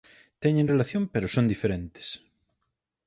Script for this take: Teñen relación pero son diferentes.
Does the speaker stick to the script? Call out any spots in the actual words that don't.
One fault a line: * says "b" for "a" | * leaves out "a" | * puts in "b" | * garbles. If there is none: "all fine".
all fine